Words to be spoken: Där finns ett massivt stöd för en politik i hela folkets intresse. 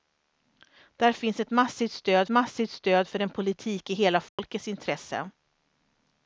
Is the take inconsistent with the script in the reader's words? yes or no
yes